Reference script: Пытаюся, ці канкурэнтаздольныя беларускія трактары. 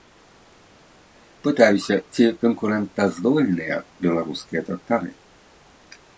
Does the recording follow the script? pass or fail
pass